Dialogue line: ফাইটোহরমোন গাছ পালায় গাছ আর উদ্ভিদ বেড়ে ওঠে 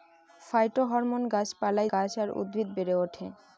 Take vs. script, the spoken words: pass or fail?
pass